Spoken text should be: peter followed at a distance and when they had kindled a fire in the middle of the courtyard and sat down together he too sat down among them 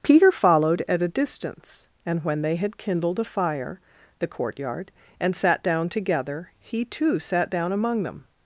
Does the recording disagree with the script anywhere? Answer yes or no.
yes